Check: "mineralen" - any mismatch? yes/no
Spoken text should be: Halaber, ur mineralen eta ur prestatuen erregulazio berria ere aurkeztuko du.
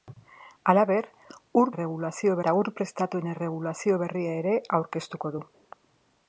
yes